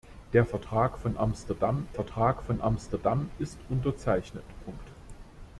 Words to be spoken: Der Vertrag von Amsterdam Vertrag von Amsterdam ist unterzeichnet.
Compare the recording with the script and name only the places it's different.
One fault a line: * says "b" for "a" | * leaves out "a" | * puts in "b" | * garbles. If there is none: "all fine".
all fine